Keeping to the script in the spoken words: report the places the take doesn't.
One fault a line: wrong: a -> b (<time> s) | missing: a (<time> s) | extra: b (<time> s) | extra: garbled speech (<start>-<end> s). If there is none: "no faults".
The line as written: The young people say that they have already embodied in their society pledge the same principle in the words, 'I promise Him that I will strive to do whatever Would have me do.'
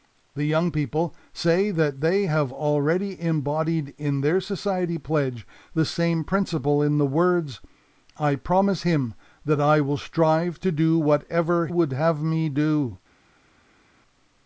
no faults